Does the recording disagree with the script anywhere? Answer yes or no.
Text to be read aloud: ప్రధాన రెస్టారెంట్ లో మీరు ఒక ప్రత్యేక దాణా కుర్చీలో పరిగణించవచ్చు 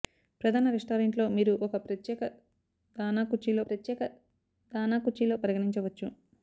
yes